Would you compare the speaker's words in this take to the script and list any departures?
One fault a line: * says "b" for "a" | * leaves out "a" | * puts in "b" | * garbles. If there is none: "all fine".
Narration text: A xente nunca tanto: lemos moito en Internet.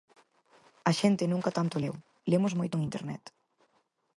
* puts in "leu"